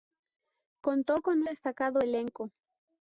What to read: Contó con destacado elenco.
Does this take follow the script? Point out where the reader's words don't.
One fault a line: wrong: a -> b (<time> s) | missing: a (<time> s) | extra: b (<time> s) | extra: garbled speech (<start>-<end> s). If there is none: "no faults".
no faults